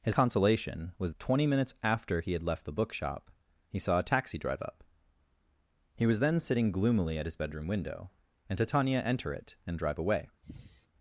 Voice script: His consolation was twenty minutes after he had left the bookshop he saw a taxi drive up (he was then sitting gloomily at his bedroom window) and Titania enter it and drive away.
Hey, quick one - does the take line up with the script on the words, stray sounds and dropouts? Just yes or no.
no